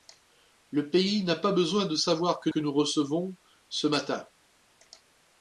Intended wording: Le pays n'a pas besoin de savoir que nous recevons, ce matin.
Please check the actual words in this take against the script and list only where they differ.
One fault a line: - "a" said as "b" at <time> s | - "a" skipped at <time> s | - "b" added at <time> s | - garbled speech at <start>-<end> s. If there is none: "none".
- "que" added at 2.5 s